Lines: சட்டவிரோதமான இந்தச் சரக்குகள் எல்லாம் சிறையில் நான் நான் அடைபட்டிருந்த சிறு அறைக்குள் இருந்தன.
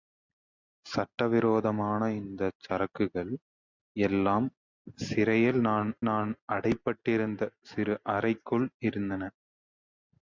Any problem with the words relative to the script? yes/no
no